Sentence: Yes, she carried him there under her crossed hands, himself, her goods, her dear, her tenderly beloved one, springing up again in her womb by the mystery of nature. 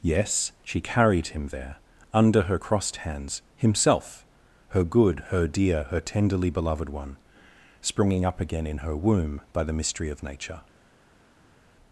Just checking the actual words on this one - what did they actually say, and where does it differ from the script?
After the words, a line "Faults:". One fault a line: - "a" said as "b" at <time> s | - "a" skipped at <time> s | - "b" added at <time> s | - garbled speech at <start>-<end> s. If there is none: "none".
Yes, she carried him there under her crossed hands, himself, her good, her dear, her tenderly beloved one, springing up again in her womb by the mystery of nature.
Faults:
- "goods" said as "good" at 4.8 s